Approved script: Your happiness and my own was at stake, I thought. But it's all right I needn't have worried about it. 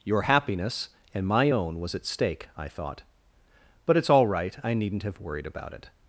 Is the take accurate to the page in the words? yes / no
yes